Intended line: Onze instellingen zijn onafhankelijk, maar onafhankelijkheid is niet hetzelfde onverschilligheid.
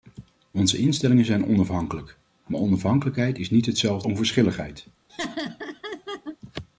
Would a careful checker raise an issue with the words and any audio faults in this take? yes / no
yes